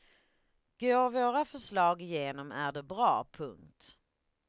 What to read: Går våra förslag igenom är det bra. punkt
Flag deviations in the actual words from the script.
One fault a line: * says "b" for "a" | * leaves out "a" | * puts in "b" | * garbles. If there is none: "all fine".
all fine